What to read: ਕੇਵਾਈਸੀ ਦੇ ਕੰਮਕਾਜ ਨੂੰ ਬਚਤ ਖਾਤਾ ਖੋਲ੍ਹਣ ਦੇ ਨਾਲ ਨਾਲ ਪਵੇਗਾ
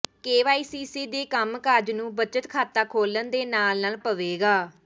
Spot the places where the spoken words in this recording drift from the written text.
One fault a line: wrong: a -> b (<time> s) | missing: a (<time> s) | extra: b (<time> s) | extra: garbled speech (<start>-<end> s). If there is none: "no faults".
no faults